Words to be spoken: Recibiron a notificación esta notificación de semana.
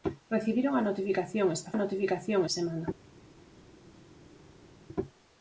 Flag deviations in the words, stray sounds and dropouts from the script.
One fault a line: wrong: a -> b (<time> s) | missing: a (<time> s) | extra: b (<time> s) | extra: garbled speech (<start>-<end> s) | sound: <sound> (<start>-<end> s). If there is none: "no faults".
no faults